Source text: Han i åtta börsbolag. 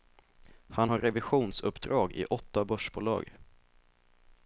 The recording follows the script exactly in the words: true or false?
false